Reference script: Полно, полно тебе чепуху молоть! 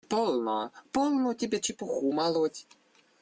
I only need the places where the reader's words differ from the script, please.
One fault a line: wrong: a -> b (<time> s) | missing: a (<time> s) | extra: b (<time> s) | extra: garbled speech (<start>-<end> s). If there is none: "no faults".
no faults